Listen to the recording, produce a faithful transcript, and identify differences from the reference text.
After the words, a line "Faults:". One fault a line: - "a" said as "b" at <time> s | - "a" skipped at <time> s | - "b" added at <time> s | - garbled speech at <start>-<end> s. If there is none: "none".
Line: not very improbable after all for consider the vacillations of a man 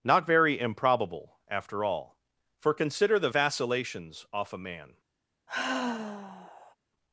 not very improbable after all for consider the vacillations off a man
Faults:
- "of" said as "off" at 4.3 s